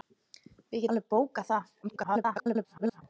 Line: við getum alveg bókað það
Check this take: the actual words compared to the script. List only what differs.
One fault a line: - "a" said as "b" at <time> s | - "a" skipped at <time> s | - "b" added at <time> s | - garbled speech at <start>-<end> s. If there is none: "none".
- "getum" skipped at 0.8 s
- garbled speech at 1.8-3.0 s